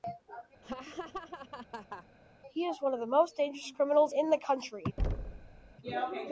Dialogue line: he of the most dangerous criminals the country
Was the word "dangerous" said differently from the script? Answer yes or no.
no